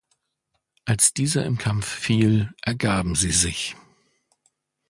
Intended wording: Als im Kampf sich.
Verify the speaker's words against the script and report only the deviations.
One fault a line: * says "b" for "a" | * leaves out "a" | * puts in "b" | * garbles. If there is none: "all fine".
* puts in "dieser"
* puts in "fiel ergaben sie"